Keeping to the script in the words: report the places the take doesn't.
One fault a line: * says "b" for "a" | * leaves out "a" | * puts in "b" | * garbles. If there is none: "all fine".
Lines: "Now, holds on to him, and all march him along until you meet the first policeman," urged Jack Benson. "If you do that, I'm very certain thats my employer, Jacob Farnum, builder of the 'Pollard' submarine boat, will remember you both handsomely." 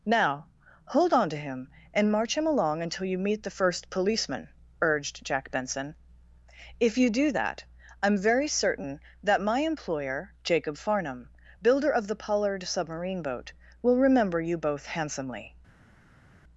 * says "hold" for "holds"
* leaves out "all"
* says "that" for "thats"